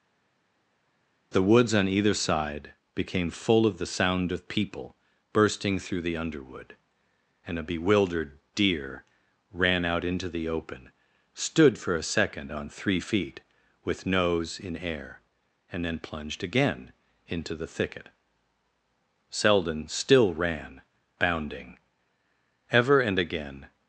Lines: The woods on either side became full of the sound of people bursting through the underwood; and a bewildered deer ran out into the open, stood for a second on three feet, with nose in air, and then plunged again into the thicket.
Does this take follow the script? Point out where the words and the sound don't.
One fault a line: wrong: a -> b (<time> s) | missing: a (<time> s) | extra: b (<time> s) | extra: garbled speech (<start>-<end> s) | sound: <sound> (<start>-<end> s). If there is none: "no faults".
extra: Selden still ran bounding ever and again (19.3 s)